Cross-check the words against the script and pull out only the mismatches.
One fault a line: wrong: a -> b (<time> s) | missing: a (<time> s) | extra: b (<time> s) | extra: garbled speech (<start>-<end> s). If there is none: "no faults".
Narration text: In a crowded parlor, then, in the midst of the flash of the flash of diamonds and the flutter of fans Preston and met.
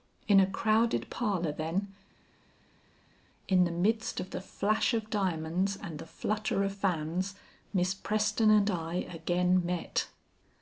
missing: the flash of (5.1 s)
extra: Miss (7.7 s)
extra: I again (8.7 s)